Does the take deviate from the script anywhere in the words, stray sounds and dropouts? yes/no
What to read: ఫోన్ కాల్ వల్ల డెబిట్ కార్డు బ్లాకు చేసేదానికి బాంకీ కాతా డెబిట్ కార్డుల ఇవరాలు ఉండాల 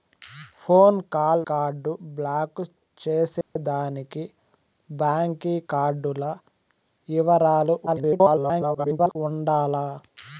yes